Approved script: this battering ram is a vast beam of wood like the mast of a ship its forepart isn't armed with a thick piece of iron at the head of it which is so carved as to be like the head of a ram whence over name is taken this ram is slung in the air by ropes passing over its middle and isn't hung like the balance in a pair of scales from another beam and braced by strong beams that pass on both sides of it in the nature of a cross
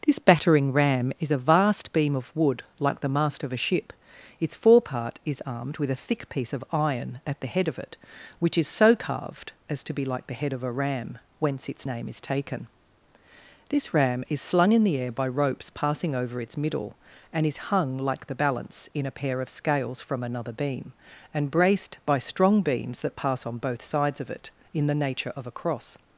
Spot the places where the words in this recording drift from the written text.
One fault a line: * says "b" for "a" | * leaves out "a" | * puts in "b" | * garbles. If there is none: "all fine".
* says "is" for "isn't"
* says "its" for "over"
* says "is" for "isn't"